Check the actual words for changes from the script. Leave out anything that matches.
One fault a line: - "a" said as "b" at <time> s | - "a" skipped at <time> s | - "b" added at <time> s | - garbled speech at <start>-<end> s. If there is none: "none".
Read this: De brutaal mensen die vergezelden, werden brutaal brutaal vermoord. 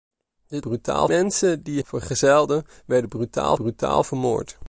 none